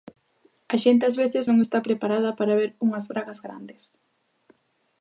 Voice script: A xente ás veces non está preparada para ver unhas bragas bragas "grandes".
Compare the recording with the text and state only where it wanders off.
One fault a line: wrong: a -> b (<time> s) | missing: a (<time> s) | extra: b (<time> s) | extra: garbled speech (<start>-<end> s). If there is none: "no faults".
missing: bragas (3.4 s)